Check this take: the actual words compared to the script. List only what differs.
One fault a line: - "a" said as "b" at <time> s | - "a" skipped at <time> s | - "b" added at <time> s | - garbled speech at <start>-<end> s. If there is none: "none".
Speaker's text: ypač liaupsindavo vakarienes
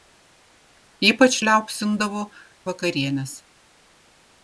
none